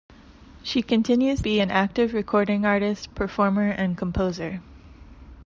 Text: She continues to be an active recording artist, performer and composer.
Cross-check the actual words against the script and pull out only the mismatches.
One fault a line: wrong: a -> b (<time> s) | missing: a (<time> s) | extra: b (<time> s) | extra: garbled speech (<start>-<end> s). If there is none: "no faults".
missing: to (1.4 s)